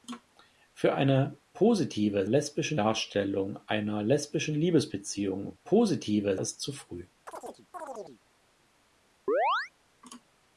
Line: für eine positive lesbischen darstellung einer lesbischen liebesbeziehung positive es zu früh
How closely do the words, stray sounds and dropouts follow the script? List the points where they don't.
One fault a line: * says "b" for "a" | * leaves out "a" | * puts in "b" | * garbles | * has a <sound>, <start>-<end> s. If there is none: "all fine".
* has a chirp, 7.3-8.2 s
* has a chirp, 9.3-9.7 s